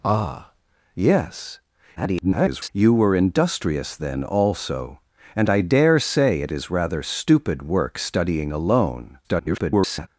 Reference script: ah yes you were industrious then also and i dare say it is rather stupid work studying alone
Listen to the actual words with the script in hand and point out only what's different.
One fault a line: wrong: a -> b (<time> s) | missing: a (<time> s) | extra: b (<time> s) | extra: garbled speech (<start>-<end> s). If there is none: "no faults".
extra: garbled speech (2.0-2.7 s)
extra: garbled speech (9.2-10.1 s)